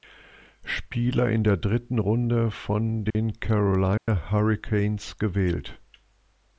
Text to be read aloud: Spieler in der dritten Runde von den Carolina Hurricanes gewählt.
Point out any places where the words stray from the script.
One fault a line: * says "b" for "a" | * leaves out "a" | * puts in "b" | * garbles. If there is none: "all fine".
all fine